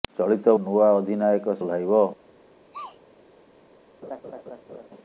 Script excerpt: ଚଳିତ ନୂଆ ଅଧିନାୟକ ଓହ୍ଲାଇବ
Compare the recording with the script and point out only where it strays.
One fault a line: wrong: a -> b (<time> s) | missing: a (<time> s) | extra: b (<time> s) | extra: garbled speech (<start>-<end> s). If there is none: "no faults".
no faults